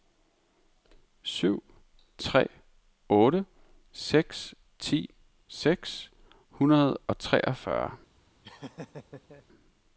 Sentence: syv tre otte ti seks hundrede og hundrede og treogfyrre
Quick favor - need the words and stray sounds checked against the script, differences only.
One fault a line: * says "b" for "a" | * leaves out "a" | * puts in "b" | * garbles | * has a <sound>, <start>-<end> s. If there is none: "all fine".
* puts in "seks"
* leaves out "hundrede og"
* has a laugh, 8.4-9.5 s